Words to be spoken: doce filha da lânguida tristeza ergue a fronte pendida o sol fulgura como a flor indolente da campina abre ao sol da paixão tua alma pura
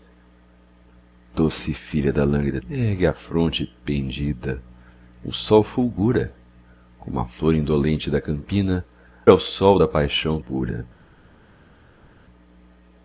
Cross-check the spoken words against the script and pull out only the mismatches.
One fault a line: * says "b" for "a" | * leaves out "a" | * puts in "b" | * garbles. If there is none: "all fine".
* leaves out "tristeza"
* leaves out "abre"
* leaves out "tua alma"